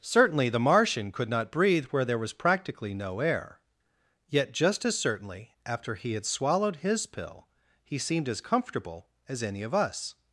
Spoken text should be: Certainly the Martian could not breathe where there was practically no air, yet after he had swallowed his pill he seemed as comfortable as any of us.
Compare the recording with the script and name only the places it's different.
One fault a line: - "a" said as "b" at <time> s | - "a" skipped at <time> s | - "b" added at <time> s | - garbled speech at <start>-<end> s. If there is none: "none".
- "just as certainly" added at 4.5 s